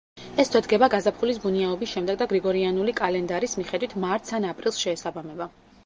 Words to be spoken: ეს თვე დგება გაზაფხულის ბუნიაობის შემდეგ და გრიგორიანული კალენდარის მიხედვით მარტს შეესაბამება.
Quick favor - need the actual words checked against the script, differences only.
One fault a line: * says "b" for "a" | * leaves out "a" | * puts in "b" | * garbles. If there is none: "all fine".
* puts in "ან აპრილს"